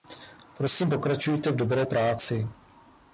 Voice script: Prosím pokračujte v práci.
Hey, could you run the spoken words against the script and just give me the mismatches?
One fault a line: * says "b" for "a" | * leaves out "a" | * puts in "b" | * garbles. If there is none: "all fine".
* puts in "dobré"